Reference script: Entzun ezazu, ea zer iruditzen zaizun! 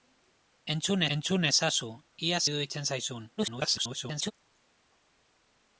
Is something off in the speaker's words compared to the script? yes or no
yes